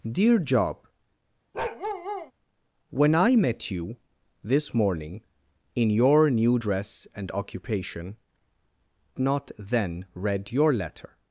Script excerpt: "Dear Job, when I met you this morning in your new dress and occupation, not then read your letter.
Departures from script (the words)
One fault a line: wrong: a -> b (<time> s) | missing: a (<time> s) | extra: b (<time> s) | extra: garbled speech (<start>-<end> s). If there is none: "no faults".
no faults